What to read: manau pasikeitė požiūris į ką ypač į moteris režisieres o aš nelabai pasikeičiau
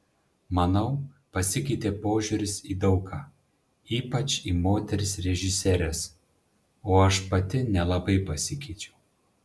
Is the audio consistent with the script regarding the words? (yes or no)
no